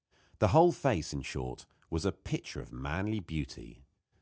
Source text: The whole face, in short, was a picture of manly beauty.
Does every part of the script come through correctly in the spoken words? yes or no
yes